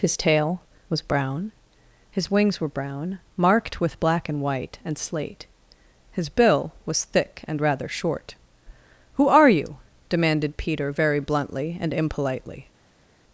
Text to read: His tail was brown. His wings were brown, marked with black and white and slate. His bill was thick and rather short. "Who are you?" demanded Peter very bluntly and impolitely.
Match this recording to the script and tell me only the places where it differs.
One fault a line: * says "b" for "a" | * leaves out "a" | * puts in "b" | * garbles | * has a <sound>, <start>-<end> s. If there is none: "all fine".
all fine